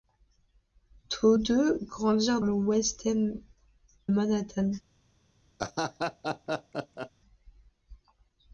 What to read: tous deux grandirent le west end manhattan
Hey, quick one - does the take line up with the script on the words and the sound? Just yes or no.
no